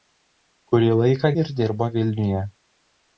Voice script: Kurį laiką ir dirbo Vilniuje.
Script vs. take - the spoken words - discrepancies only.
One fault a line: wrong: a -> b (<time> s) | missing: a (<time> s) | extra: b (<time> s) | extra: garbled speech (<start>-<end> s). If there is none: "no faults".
no faults